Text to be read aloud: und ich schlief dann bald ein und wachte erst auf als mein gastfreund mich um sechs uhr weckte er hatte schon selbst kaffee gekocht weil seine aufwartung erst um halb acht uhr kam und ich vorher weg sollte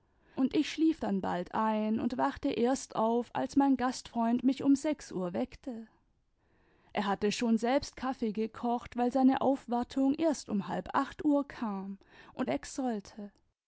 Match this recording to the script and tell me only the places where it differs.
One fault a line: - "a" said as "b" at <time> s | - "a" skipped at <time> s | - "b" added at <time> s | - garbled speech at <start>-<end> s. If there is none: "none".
- "ich vorher" skipped at 12.5 s